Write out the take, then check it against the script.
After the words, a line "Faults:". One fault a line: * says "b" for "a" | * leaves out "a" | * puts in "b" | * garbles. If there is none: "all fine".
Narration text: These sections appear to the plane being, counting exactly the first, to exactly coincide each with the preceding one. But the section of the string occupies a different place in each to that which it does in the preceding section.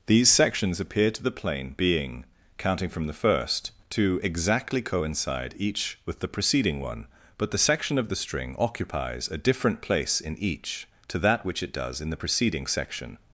These sections appear to the plane being, counting from the first, to exactly coincide each with the preceding one. But the section of the string occupies a different place in each to that which it does in the preceding section.
Faults:
* says "from" for "exactly"